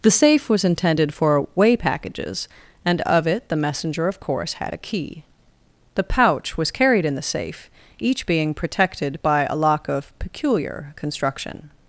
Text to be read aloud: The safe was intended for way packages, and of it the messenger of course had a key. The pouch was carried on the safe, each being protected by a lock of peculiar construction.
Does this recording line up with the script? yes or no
no